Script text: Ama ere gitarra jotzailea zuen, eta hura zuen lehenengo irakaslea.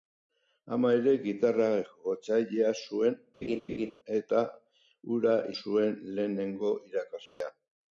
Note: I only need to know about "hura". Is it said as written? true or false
true